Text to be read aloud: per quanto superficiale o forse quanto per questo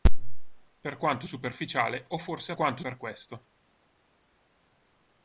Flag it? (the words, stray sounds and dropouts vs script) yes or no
no